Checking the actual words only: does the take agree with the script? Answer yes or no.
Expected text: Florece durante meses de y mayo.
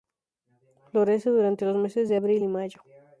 no